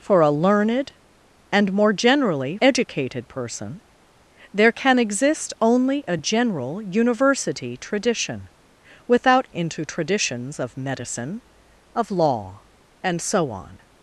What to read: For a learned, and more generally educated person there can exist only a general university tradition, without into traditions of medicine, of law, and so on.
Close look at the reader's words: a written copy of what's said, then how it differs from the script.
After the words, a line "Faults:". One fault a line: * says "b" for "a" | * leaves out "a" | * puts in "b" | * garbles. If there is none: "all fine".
For a learned, and more generally educated person there can exist only a general university tradition, without into traditions of medicine, of law, and so on.
Faults:
all fine